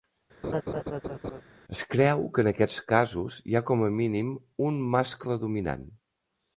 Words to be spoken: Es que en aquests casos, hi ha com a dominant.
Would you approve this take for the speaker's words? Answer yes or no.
no